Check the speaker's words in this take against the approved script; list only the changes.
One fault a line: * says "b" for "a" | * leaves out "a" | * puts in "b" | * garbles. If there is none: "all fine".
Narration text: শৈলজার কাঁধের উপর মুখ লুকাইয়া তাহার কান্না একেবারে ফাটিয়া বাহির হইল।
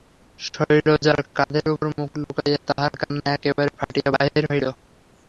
all fine